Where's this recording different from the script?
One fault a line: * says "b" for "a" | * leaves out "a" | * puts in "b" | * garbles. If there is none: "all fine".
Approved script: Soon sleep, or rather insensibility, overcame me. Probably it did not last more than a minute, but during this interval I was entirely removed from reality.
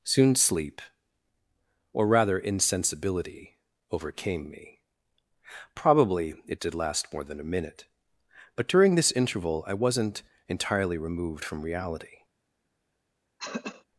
* leaves out "not"
* says "wasn't" for "was"